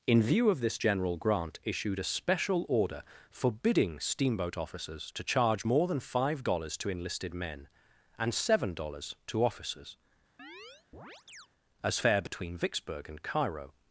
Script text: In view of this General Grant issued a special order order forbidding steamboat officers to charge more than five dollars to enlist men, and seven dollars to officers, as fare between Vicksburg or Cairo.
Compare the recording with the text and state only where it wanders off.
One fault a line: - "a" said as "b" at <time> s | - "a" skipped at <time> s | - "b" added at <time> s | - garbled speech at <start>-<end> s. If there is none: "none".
- "order" skipped at 3.0 s
- "enlist" said as "enlisted" at 6.9 s
- "or" said as "and" at 13.1 s